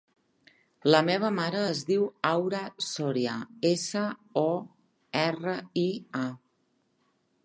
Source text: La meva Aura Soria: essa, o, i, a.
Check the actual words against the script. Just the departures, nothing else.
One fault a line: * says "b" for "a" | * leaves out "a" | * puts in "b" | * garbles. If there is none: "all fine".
* puts in "mare es diu"
* puts in "erra"